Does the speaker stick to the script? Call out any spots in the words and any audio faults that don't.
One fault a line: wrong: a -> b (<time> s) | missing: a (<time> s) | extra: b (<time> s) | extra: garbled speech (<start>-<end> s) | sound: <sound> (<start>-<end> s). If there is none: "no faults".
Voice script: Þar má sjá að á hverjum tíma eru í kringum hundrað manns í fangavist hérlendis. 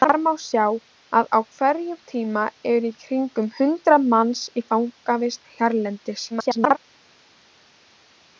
extra: garbled speech (6.3-6.8 s)